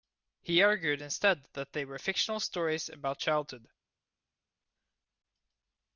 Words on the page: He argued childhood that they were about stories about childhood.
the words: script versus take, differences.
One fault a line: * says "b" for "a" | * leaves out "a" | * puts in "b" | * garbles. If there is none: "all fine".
* says "instead" for "childhood"
* says "fictional" for "about"